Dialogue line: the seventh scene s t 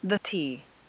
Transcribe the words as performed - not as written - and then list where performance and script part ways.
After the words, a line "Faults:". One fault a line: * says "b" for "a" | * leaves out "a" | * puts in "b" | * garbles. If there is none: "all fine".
the t
Faults:
* leaves out "seventh scene s"